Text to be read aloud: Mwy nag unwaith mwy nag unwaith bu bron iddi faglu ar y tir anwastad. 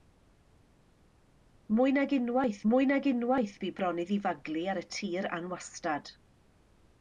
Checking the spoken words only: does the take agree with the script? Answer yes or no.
yes